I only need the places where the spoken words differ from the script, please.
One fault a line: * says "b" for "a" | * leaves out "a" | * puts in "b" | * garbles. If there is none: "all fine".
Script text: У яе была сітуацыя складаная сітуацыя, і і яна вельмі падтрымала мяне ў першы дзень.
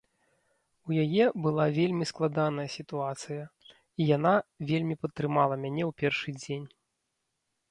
* says "вельмі" for "сітуацыя"
* leaves out "і"